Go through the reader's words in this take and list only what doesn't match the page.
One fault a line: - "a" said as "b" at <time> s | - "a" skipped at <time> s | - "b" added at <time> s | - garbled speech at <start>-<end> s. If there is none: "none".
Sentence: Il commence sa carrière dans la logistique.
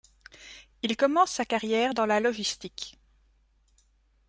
none